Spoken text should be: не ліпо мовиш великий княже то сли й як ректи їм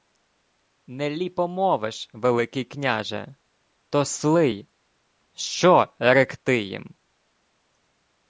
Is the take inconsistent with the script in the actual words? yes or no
yes